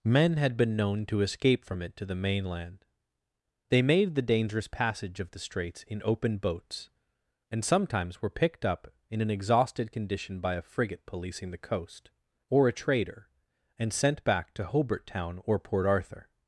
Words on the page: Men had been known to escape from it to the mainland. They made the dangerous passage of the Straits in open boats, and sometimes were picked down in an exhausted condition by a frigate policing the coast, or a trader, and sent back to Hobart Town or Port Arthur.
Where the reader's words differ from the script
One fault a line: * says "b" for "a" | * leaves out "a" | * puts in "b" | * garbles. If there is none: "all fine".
* says "up" for "down"